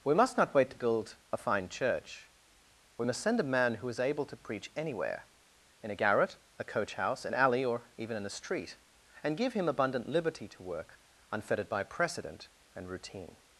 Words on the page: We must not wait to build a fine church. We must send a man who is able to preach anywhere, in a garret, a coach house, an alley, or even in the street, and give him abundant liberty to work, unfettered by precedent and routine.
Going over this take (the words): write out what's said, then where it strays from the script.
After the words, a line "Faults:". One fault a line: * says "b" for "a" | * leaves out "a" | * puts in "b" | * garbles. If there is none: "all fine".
We must not wait to build a fine church. We must send a man who is able to preach anywhere, in a garret, a coach house, an alley, or even in a street, and give him abundant liberty to work, unfettered by precedent and routine.
Faults:
* says "a" for "the"